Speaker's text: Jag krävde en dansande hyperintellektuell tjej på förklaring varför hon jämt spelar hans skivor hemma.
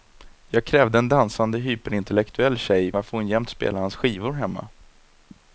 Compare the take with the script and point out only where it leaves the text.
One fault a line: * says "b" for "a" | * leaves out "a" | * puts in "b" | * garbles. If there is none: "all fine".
* leaves out "på förklaring"